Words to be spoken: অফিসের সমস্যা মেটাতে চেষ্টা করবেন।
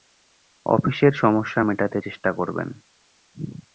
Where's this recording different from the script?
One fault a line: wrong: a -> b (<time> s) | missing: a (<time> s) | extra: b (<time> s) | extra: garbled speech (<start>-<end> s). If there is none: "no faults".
no faults